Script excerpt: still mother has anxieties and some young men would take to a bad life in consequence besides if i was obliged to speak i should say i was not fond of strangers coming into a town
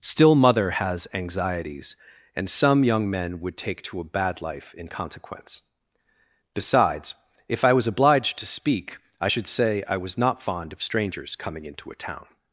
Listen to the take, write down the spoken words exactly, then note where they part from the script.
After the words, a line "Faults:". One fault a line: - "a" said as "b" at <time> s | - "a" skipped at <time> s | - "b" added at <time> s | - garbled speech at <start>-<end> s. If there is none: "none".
still mother has anxieties and some young men would take to a bad life in consequence besides if i was obliged to speak i should say i was not fond of strangers coming into a town
Faults:
none